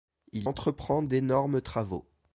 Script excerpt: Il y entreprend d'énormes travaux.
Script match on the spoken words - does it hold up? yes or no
no